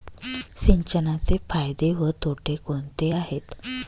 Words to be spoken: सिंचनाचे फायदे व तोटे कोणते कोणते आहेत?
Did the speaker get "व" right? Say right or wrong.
right